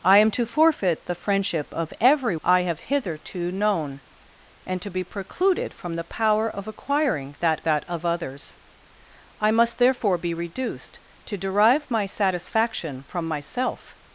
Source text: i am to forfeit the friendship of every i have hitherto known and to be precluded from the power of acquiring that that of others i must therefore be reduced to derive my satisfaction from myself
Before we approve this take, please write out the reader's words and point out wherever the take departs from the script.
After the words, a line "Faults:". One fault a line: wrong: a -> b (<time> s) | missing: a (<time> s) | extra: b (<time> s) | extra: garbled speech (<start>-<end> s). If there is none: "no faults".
i am to forfeit the friendship of every i have hitherto known and to be precluded from the power of acquiring that that of others i must therefore be reduced to derive my satisfaction from myself
Faults:
no faults